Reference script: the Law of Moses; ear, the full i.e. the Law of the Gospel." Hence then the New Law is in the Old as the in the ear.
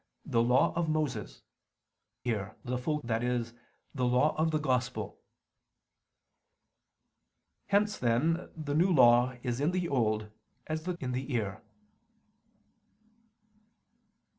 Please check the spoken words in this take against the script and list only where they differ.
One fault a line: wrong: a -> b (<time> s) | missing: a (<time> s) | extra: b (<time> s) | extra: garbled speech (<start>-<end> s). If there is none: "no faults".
no faults